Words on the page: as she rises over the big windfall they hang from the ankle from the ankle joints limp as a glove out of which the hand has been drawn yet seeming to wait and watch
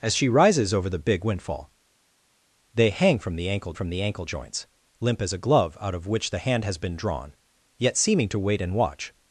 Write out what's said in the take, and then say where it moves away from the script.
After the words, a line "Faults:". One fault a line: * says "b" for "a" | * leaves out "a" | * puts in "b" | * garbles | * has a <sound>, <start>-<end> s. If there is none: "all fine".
as she rises over the big windfall they hang from the ankle from the ankle joints limp as a glove out of which the hand has been drawn yet seeming to wait and watch
Faults:
all fine